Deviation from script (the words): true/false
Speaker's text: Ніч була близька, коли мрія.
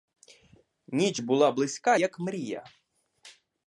true